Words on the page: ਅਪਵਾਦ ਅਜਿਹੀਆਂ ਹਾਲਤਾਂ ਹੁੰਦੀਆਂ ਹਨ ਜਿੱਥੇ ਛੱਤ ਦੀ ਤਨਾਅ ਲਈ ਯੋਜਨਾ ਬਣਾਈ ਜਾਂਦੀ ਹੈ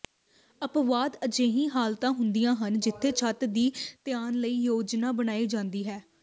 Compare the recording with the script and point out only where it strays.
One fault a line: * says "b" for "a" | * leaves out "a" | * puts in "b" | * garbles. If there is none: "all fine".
all fine